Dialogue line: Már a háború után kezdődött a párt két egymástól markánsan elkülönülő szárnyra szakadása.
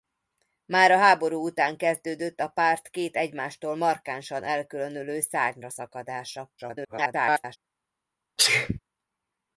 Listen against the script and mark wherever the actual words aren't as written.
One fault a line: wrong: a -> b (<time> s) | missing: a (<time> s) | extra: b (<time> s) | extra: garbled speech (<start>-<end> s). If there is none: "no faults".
extra: garbled speech (6.6-7.6 s)